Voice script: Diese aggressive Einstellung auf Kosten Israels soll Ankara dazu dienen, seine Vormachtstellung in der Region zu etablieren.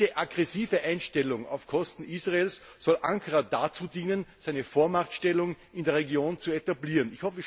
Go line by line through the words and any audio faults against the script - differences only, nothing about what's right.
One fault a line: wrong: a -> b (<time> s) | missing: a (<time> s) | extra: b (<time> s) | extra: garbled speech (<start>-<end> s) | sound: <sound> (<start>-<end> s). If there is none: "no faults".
no faults